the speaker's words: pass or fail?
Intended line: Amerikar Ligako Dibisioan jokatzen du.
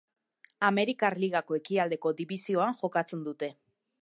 fail